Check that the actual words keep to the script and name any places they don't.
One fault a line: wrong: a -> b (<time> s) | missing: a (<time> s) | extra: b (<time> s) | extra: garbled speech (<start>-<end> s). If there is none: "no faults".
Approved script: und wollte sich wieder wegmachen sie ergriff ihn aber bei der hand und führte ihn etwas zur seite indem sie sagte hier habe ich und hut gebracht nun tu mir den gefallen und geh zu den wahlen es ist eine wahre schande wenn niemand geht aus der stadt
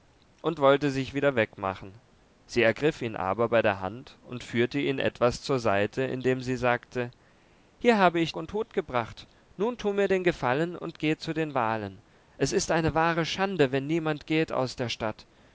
no faults